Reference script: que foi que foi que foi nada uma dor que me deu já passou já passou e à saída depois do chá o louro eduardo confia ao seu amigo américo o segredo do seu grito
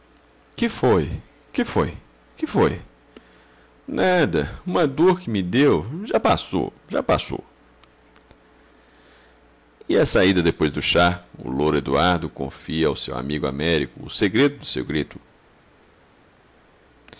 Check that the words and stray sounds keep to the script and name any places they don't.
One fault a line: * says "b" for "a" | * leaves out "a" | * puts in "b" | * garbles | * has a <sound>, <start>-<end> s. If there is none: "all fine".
all fine